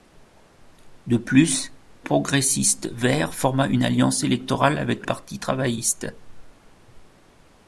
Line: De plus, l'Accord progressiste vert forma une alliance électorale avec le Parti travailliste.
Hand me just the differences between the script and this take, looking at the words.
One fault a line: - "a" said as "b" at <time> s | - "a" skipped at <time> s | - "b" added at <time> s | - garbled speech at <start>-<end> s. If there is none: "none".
- "l'Accord" skipped at 1.7 s
- "le" skipped at 5.1 s